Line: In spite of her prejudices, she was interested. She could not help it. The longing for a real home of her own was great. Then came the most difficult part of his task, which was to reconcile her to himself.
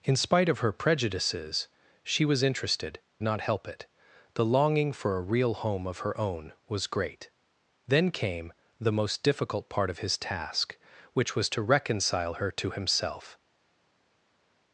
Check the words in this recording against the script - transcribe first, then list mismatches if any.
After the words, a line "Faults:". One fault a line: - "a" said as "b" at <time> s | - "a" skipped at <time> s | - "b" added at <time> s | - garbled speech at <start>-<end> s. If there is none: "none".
In spite of her prejudices, she was interested. Not help it. The longing for a real home of her own was great. Then came the most difficult part of his task, which was to reconcile her to himself.
Faults:
- "She could" skipped at 3.0 s